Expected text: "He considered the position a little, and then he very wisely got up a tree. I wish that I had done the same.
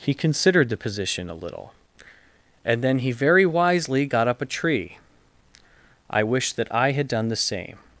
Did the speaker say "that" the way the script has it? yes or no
yes